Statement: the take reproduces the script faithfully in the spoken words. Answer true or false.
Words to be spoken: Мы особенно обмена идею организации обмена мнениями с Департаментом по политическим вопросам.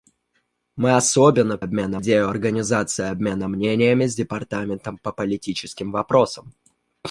true